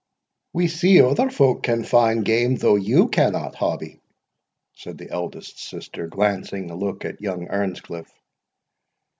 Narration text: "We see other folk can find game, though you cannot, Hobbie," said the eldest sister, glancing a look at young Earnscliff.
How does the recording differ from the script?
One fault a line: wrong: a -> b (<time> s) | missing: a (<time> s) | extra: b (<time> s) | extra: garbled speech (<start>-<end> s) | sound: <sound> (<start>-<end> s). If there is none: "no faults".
no faults